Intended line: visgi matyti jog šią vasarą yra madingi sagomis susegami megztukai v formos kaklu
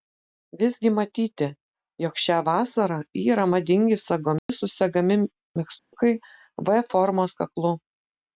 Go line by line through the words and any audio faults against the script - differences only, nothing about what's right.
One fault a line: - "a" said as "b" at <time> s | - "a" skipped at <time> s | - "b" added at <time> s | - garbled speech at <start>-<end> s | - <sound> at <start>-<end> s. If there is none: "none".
- dropout at 4.4-4.5 s
- dropout at 5.8-5.9 s